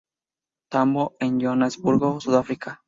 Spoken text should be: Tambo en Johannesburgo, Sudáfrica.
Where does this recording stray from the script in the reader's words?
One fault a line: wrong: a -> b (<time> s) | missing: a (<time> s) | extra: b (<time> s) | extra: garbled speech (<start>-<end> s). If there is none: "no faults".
no faults